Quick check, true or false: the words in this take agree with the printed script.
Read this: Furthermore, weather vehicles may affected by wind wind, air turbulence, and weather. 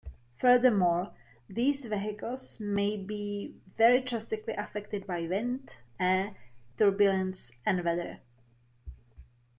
false